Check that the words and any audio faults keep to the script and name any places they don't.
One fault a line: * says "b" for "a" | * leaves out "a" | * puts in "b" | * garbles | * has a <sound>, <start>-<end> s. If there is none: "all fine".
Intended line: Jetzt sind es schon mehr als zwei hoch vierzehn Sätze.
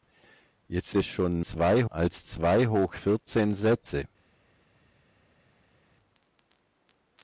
* leaves out "sind"
* says "zwei" for "mehr"